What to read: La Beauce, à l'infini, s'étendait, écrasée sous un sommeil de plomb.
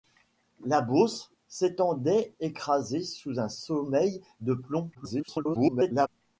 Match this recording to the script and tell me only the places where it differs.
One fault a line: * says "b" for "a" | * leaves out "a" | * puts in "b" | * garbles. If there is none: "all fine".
* leaves out "à l'infini"
* garbles